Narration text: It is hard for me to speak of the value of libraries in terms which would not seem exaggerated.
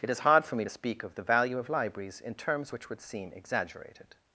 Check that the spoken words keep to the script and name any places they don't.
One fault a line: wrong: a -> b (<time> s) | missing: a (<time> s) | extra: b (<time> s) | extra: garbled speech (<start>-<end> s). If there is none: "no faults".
missing: not (3.0 s)